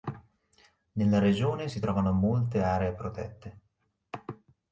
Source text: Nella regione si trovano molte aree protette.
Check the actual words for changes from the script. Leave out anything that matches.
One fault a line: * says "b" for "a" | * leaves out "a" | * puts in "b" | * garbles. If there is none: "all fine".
all fine